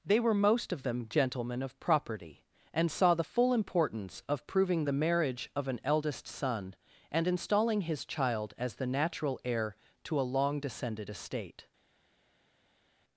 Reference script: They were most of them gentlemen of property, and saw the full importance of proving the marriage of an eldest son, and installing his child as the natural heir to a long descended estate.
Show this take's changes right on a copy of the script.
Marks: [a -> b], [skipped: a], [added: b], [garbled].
They were most of them gentlemen of property, and saw the full importance of proving the marriage of an eldest son, and installing his child as the natural heir to a long descended estate.